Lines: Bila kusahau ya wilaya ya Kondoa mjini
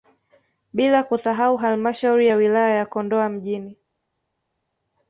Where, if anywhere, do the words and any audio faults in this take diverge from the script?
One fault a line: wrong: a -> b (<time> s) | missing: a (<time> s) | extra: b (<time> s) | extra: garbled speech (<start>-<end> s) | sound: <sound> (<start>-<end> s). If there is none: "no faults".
extra: halmashauri (1.6 s)